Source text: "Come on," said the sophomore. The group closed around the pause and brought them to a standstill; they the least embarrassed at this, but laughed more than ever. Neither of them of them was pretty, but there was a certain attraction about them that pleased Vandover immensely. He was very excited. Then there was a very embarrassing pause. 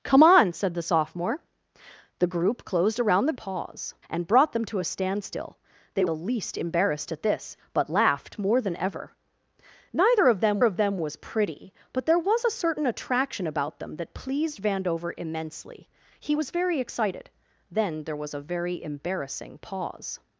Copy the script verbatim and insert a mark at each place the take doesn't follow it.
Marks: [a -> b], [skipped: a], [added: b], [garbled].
"Come on," said the sophomore. The group closed around the pause and brought them to a standstill; they the least embarrassed at this, but laughed more than ever. Neither of them of them was pretty, but there was a certain attraction about them that pleased Vandover immensely. He was very excited. Then there was a very embarrassing pause.